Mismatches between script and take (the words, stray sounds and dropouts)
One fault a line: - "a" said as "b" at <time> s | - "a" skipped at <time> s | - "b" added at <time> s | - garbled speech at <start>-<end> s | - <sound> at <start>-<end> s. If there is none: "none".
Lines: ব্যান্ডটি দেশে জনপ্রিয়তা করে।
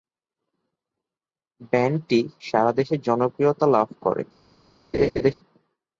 - "সারা" added at 2.4 s
- "লাভ" added at 3.7 s
- laugh at 4.9-5.3 s